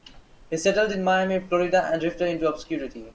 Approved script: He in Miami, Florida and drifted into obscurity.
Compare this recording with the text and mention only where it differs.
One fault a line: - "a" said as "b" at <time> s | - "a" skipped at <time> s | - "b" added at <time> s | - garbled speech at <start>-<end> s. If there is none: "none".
- "settled" added at 0.6 s